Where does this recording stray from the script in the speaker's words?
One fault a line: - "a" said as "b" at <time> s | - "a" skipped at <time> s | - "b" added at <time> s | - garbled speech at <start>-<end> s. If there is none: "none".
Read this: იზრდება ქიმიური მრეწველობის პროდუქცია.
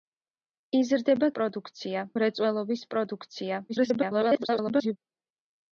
- "ქიმიური" said as "პროდუქცია" at 1.4 s
- garbled speech at 3.7-5.0 s